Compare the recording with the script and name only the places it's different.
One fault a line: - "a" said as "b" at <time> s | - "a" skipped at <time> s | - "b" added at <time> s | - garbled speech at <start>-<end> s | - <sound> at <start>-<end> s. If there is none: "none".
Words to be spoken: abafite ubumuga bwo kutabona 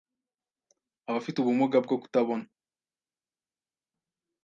none